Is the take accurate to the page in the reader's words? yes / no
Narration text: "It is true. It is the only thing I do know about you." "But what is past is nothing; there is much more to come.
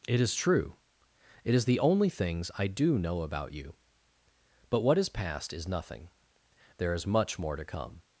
no